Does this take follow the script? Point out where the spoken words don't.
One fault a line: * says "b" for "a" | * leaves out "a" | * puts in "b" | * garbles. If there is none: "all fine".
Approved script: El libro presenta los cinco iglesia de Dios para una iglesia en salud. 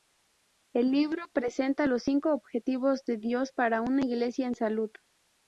* says "objetivos" for "iglesia"